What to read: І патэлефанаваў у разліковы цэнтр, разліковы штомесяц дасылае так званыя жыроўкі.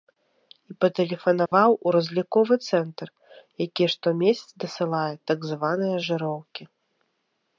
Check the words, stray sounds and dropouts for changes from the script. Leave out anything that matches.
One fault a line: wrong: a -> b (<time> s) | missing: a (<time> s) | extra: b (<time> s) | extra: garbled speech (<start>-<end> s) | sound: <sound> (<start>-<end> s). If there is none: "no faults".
sound: dropout (1.5-1.5 s)
wrong: разліковы -> які (3.7 s)